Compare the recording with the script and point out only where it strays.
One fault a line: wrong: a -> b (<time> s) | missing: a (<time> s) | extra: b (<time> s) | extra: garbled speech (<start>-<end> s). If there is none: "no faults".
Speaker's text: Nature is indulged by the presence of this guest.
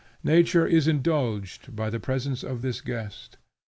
no faults